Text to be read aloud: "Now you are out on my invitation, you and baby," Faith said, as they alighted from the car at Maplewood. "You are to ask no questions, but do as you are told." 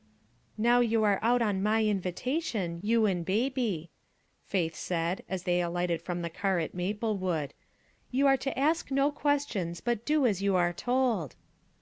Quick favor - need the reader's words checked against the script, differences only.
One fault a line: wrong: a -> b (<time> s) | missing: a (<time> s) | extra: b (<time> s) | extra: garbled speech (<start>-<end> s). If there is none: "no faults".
no faults